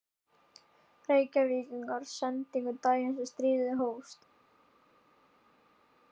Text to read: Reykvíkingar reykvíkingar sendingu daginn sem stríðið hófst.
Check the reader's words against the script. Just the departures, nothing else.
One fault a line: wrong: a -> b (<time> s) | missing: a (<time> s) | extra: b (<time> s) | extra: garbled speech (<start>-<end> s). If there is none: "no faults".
missing: reykvíkingar (2.1 s)